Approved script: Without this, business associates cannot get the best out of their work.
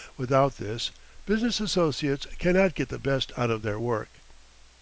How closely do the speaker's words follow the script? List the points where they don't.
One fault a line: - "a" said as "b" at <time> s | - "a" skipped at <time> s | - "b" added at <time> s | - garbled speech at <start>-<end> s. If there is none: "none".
none